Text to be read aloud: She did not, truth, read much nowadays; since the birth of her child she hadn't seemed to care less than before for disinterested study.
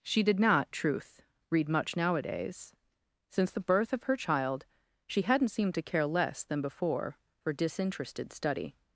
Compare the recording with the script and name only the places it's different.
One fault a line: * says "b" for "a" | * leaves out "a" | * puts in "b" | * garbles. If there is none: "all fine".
all fine